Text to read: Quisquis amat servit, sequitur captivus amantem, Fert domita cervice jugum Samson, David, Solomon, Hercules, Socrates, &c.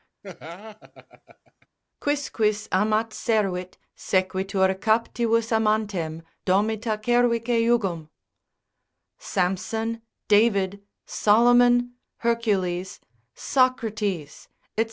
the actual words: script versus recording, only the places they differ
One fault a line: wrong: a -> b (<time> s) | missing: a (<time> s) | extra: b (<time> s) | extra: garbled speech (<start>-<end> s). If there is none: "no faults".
missing: Fert (6.2 s)